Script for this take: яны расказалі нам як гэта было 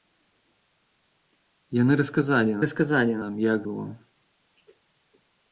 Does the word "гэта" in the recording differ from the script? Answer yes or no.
yes